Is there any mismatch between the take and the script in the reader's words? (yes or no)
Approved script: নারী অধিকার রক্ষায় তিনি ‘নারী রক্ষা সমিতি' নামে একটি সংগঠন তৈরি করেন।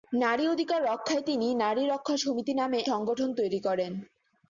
yes